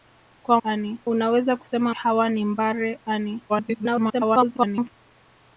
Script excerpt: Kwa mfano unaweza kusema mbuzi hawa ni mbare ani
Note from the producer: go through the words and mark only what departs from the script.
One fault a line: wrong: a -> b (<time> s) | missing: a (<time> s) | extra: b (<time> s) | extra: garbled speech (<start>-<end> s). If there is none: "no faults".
wrong: mfano -> ani (0.6 s)
missing: mbuzi (2.0 s)
extra: garbled speech (3.5-4.9 s)